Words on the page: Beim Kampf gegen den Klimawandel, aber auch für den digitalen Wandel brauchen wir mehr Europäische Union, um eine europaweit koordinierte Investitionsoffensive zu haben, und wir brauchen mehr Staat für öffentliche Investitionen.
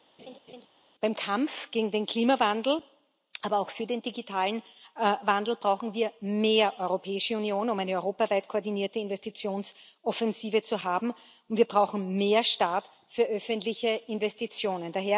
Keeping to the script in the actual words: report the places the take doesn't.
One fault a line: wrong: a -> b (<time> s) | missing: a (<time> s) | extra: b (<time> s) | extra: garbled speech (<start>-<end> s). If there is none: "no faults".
no faults